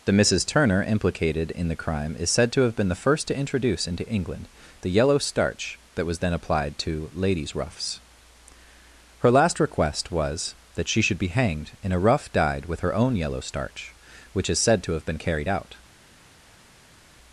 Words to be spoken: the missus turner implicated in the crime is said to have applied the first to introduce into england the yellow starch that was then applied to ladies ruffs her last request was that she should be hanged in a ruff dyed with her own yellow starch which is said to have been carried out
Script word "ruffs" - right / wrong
right